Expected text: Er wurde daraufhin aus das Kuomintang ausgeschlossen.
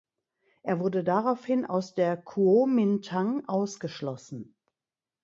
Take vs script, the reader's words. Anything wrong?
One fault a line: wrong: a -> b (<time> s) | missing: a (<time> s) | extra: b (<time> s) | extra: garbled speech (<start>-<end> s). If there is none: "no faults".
wrong: das -> der (1.9 s)